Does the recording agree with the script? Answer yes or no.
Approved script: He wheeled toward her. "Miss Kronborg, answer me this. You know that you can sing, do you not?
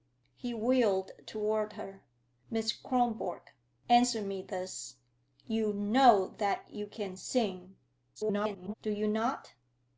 no